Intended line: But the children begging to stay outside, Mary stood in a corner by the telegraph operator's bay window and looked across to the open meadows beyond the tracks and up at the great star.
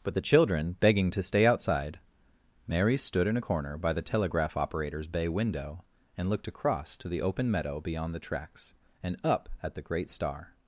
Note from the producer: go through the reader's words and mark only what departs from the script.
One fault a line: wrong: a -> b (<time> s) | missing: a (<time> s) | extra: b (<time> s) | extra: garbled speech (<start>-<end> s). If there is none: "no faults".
wrong: meadows -> meadow (7.5 s)